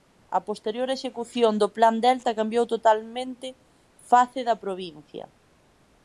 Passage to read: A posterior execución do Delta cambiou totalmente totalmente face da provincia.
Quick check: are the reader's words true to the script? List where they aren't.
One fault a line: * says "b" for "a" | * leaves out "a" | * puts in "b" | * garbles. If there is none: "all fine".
* puts in "Plan"
* leaves out "totalmente"